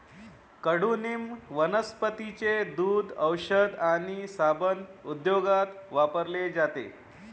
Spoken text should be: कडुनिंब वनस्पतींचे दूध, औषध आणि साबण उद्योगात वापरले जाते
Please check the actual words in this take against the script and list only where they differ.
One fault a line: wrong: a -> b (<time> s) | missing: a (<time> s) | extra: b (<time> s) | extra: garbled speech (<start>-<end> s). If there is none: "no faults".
no faults